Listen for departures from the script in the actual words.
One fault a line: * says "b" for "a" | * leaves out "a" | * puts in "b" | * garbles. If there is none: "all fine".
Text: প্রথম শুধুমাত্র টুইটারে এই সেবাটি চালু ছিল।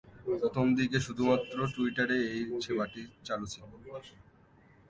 * puts in "দিকে"